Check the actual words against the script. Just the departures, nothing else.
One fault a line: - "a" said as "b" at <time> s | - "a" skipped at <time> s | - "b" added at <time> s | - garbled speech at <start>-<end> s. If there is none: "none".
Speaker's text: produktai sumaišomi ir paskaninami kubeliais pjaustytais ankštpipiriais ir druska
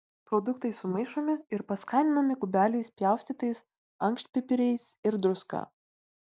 none